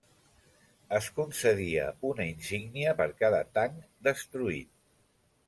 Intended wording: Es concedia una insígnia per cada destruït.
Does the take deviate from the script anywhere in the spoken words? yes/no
yes